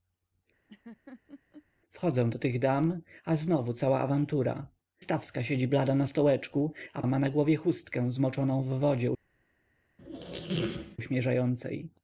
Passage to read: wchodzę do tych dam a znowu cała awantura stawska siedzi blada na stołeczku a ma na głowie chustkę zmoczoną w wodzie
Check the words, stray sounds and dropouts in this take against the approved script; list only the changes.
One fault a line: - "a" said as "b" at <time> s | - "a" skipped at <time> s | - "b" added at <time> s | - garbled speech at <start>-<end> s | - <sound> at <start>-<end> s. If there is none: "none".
- laugh at 0.7-1.7 s
- squeak at 10.0-11.0 s